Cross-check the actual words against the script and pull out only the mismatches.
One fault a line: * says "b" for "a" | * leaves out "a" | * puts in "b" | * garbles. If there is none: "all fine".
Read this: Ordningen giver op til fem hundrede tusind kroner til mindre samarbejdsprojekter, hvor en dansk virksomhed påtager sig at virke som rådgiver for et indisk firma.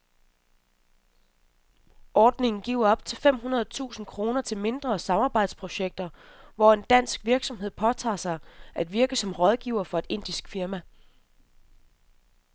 all fine